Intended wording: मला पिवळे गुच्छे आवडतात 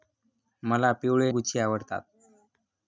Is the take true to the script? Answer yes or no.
yes